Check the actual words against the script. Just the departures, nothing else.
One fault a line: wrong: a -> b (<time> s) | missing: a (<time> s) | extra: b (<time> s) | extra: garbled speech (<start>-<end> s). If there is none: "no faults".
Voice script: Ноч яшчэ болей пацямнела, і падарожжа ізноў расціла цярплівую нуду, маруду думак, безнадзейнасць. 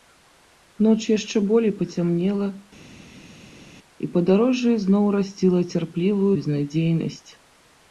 missing: нуду маруду думак (6.3 s)